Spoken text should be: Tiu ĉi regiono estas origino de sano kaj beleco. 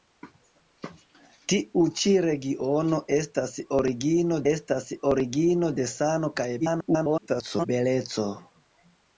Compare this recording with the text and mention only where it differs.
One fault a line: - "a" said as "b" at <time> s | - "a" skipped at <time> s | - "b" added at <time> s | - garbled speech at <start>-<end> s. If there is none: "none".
- "estas origino" added at 4.5 s
- garbled speech at 6.6-7.7 s